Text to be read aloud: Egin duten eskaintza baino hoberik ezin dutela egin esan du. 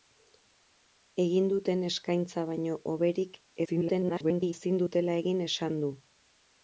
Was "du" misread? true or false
false